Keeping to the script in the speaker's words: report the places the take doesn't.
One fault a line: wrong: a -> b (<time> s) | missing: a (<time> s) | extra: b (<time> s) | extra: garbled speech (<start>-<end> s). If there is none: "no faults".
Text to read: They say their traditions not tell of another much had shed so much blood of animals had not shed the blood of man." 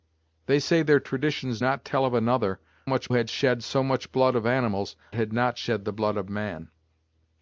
no faults